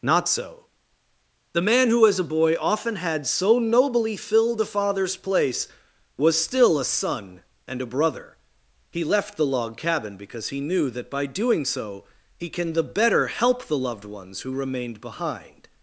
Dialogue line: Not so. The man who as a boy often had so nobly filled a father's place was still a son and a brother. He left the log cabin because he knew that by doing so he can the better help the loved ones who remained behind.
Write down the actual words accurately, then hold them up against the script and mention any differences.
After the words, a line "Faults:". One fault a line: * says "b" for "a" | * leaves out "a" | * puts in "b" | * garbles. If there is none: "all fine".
Not so. The man who as a boy often had so nobly filled a father's place was still a son and a brother. He left the log cabin because he knew that by doing so he can the better help the loved ones who remained behind.
Faults:
all fine